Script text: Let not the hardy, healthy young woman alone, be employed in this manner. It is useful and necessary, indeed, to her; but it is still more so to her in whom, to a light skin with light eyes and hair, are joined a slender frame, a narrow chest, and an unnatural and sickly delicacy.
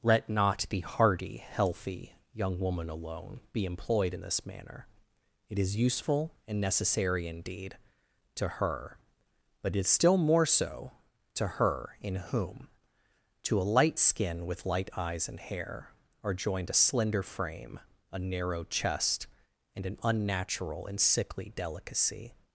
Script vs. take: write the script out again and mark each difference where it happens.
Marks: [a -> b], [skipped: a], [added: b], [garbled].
Let not the hardy, healthy young woman alone, be employed in this manner. It is useful and necessary, indeed, to her; but it is still more so to her in whom, to a light skin with light eyes and hair, are joined a slender frame, a narrow chest, and an unnatural and sickly delicacy.